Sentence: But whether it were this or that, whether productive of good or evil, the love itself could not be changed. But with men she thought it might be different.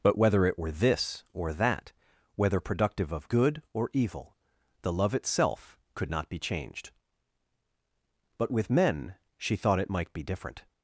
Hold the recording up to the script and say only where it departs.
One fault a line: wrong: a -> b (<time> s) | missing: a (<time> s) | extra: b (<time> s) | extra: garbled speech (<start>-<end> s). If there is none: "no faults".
no faults